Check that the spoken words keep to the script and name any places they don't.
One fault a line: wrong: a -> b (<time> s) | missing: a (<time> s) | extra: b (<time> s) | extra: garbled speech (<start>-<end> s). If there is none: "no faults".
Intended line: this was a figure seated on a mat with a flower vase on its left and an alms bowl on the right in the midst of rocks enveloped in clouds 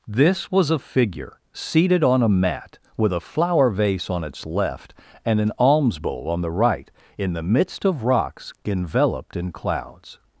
no faults